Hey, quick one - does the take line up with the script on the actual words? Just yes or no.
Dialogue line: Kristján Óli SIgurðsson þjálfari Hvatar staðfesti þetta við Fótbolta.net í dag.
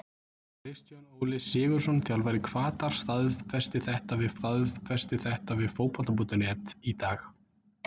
no